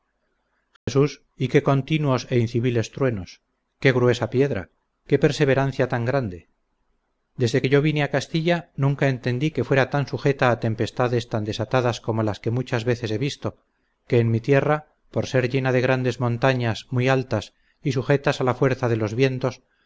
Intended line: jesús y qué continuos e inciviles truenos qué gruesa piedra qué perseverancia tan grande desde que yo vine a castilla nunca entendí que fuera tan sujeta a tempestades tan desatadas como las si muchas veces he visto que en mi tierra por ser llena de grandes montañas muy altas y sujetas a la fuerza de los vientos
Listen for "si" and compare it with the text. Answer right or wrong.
wrong